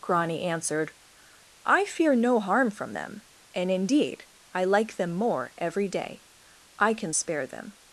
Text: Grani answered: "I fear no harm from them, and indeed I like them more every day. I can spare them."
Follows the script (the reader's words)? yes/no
yes